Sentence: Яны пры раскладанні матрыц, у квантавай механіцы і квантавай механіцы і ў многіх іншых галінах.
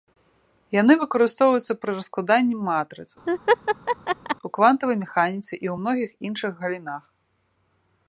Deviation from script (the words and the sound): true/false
true